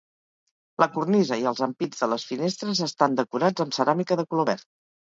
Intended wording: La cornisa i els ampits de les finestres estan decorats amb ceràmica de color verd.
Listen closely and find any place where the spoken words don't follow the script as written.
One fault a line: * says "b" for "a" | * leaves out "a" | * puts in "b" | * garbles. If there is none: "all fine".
all fine